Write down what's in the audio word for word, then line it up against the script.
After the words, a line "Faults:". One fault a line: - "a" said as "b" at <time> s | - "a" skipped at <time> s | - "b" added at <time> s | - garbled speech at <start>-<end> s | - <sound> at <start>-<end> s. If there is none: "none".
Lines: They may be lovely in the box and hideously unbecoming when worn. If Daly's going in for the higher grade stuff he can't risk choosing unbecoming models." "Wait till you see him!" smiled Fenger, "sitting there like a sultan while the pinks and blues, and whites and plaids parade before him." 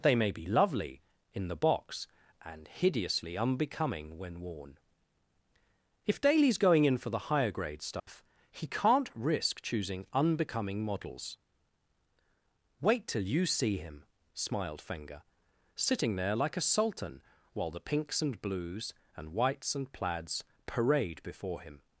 They may be lovely in the box and hideously unbecoming when worn. If Daly's going in for the higher grade stuff he can't risk choosing unbecoming models." "Wait till you see him!" smiled Fenger, "sitting there like a sultan while the pinks and blues, and whites and plaids parade before him."
Faults:
- dropout at 8.0-8.1 s